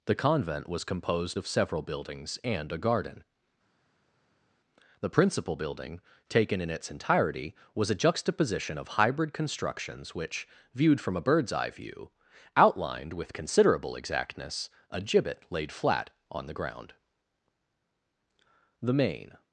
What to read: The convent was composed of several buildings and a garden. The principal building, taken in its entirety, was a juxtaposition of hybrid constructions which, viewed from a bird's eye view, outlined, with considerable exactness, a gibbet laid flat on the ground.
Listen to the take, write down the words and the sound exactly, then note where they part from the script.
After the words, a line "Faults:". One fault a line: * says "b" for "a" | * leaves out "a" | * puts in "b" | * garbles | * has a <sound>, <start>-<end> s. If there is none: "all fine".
The convent was composed of several buildings and a garden. The principal building, taken in its entirety, was a juxtaposition of hybrid constructions which, viewed from a bird's eye view, outlined, with considerable exactness, a gibbet laid flat on the ground. The main
Faults:
* puts in "The main"